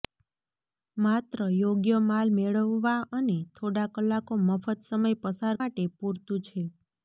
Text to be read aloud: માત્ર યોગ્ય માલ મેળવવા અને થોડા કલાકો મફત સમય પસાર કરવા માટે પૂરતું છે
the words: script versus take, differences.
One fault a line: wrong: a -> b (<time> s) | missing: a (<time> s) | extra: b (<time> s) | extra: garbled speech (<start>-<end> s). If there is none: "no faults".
missing: કરવા (5.5 s)